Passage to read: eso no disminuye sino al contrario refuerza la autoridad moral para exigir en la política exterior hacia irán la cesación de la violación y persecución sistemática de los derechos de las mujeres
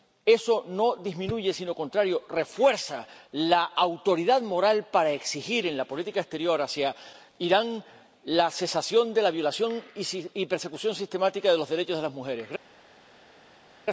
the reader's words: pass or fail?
pass